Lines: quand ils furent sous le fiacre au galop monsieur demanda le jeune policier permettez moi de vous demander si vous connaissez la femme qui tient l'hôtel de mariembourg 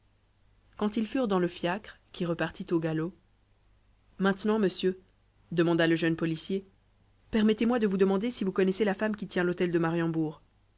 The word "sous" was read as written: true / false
false